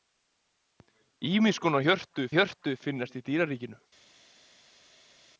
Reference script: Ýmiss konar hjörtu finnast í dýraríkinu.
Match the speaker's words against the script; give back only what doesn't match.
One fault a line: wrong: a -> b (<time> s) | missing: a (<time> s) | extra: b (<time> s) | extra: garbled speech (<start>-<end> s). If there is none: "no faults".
extra: hjörtu (2.4 s)